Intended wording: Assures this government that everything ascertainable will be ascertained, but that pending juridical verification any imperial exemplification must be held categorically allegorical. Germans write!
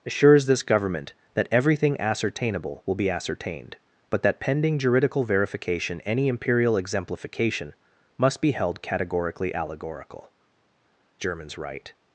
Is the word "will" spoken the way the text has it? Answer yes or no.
yes